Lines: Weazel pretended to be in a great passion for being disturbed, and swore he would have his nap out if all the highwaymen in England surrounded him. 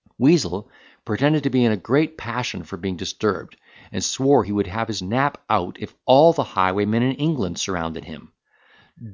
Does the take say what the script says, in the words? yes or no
yes